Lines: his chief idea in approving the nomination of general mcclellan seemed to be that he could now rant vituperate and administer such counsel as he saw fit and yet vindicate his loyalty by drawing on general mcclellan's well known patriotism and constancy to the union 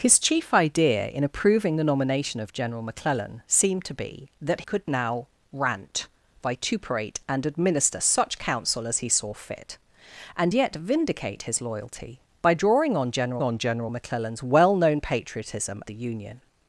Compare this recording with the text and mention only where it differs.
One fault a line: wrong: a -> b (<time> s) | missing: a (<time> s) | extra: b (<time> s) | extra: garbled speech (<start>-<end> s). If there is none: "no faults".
missing: he (4.6 s)
extra: on general (13.4 s)
missing: and constancy to (15.8 s)